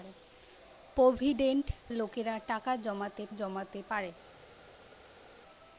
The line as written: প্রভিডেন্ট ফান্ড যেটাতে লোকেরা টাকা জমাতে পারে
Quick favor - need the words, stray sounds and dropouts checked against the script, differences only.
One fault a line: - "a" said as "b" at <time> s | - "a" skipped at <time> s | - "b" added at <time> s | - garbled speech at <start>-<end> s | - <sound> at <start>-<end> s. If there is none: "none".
- "ফান্ড যেটাতে" skipped at 1.6 s
- "জমাতে" added at 3.3 s